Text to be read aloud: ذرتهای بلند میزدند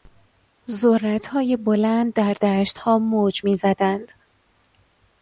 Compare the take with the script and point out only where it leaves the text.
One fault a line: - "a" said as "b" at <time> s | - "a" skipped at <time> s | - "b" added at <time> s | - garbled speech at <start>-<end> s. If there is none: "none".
- "در دشتها موج" added at 2.1 s